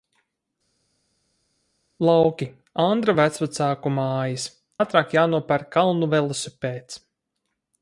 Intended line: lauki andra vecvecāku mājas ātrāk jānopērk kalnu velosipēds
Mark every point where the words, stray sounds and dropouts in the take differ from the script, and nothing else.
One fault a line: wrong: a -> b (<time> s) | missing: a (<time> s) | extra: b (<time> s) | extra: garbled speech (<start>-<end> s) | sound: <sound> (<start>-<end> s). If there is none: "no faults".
no faults